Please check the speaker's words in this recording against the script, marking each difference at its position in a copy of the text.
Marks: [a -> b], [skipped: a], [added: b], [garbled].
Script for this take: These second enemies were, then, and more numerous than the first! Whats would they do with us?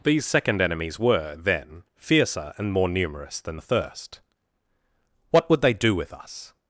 These second enemies were, then, [added: fiercer] and more numerous than the first! [Whats -> What] would they do with us?